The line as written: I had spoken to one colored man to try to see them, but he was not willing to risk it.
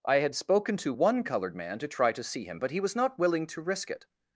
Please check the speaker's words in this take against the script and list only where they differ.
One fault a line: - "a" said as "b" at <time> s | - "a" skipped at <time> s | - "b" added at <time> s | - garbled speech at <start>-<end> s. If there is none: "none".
- "them" said as "him" at 2.4 s